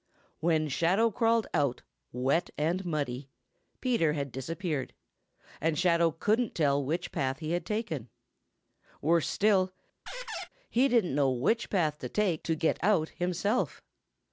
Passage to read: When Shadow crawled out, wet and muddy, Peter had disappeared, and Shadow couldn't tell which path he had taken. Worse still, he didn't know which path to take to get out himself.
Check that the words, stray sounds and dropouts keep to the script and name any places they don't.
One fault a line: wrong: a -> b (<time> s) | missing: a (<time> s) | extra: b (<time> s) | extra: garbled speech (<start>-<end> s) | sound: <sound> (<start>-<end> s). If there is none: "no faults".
sound: squeak (10.1-10.5 s)